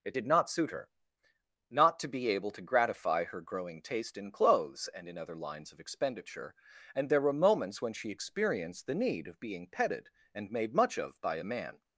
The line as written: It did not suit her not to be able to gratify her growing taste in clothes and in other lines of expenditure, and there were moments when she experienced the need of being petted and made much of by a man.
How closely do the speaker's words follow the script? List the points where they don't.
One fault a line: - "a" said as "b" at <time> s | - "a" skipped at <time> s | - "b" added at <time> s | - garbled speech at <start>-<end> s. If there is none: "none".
none